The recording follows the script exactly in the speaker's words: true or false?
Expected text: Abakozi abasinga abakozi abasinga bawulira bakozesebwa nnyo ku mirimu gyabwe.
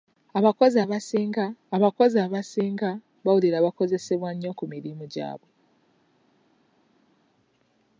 true